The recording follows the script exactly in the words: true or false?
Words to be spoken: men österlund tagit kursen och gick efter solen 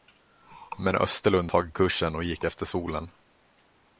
true